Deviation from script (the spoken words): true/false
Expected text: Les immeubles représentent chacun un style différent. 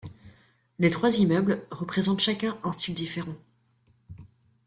true